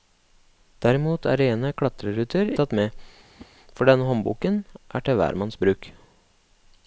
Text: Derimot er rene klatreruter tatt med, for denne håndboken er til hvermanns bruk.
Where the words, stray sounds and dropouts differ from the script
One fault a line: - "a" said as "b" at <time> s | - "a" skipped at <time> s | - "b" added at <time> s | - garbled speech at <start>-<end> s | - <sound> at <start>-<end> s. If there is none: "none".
- whoosh at 3.4-3.5 s